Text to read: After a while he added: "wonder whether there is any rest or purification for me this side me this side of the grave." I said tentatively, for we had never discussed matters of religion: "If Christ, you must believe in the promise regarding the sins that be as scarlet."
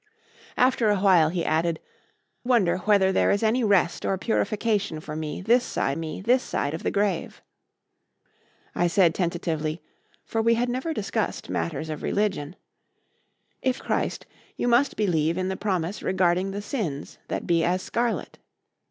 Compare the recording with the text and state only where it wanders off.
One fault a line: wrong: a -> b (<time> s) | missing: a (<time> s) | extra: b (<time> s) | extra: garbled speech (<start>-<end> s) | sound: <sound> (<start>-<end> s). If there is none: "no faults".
no faults